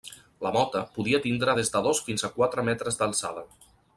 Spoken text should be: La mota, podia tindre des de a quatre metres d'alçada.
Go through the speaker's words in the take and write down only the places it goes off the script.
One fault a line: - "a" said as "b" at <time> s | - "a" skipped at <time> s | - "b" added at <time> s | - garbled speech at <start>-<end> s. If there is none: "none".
- "dos fins" added at 1.9 s